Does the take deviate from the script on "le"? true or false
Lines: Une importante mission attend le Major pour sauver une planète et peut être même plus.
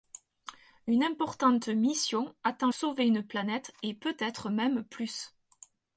true